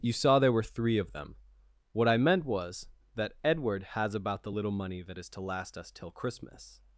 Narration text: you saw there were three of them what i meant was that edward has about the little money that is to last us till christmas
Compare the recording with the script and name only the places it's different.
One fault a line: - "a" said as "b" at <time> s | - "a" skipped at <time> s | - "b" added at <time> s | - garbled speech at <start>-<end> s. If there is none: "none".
none